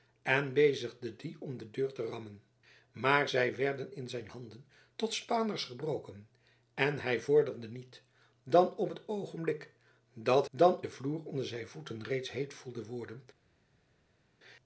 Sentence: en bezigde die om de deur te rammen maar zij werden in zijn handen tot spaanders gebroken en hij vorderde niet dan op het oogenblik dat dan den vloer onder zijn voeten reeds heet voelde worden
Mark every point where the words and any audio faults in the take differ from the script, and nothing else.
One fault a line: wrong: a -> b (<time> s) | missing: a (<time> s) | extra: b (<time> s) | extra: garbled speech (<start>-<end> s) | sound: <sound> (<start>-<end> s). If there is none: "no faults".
no faults